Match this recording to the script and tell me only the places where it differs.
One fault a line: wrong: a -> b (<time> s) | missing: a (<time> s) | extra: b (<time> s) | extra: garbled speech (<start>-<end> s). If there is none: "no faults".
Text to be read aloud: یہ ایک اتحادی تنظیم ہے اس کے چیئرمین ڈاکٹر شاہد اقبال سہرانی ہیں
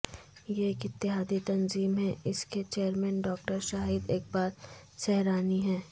no faults